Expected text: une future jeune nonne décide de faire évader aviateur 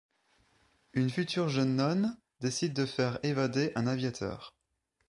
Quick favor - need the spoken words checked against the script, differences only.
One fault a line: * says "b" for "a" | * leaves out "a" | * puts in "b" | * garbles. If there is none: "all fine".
* puts in "un"